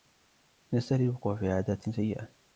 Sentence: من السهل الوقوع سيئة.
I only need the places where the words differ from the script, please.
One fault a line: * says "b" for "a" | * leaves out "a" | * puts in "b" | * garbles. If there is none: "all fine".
* puts in "في عادات"